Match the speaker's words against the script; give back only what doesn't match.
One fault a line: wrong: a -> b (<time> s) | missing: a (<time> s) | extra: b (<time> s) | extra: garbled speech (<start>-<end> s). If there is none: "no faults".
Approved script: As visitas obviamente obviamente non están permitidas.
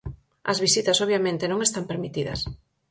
missing: obviamente (1.4 s)